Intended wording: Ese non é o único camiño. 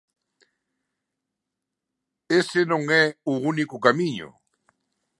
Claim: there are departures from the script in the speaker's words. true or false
false